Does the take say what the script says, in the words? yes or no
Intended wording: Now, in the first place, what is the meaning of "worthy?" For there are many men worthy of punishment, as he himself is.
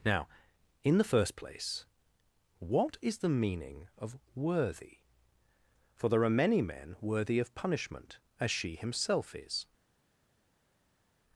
no